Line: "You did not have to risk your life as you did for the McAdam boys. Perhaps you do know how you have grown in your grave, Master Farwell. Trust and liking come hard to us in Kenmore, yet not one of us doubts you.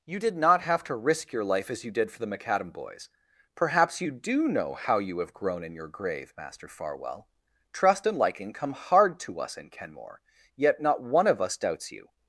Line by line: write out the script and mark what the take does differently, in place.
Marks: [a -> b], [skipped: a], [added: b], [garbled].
"You did not have to risk your life as you did for the McAdam boys. Perhaps you do know how you have grown in your grave, Master Farwell. Trust and liking come hard to us in Kenmore, yet not one of us doubts you.